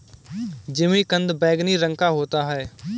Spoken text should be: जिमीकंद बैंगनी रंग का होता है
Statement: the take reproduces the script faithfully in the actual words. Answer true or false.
true